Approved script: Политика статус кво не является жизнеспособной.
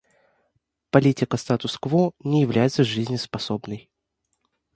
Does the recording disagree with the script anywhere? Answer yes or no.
no